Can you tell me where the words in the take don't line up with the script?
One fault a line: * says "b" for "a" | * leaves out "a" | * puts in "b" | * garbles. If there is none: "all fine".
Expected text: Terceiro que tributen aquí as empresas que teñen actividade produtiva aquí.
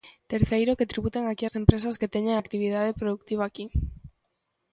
all fine